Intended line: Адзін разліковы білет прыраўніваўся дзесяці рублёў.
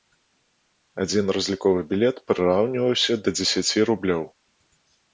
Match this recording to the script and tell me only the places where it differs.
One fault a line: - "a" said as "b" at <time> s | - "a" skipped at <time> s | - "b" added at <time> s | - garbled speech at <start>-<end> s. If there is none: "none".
- "да" added at 3.2 s